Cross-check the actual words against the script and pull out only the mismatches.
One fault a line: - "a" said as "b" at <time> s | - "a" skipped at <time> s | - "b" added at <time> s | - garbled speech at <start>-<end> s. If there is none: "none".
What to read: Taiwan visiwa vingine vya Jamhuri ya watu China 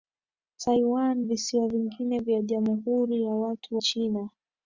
none